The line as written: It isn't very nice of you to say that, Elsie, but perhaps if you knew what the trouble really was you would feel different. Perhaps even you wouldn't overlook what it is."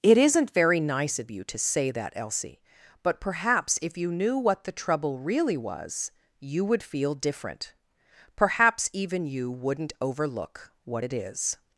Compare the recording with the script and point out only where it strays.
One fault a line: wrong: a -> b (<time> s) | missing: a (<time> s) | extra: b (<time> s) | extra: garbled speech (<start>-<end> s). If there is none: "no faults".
no faults